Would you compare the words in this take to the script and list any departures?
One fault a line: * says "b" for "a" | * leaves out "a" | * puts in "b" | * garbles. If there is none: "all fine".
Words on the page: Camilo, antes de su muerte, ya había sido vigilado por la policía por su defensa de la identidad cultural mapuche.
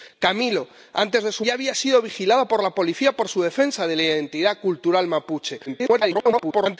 * leaves out "muerte"
* garbles